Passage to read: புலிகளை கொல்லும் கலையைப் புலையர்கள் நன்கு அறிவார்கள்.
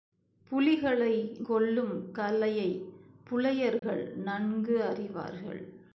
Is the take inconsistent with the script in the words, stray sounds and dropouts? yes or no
yes